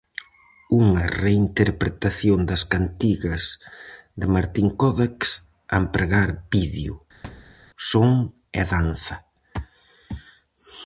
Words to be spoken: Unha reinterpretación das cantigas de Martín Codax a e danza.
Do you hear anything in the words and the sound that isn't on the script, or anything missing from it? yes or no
yes